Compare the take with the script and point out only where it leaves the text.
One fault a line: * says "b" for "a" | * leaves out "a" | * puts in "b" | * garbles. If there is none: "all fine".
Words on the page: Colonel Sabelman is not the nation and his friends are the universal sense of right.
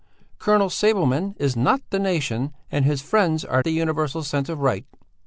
all fine